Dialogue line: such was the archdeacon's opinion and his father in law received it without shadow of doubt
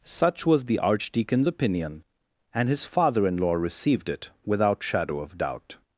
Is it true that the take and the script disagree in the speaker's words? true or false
false